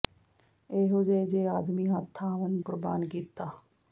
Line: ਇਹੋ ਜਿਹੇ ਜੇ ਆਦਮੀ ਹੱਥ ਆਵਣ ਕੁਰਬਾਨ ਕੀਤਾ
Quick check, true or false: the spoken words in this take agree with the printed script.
true